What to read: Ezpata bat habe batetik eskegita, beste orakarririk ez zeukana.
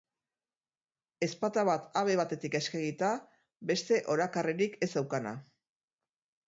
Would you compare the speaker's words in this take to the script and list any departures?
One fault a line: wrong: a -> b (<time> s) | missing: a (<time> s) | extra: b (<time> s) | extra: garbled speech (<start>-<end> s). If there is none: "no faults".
no faults